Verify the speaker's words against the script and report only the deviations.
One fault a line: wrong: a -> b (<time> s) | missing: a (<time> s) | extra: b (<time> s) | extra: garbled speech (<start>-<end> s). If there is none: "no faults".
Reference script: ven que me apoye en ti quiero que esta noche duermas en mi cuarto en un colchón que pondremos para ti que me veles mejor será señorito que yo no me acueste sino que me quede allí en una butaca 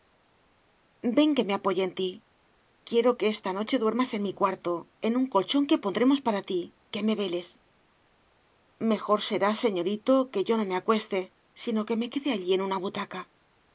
no faults